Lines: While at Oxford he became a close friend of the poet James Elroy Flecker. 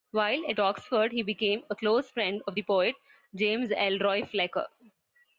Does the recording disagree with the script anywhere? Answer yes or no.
no